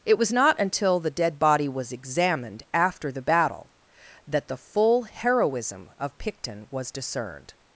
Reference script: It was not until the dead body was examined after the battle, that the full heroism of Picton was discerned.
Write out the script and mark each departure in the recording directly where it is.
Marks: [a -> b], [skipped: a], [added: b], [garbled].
It was not until the dead body was examined after the battle, that the full heroism of Picton was discerned.